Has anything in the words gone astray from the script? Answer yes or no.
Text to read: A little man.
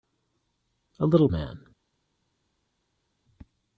no